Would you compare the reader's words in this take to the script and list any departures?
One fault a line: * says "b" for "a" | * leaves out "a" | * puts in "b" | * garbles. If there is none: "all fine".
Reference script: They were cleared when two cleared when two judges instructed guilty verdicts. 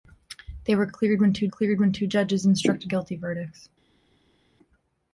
all fine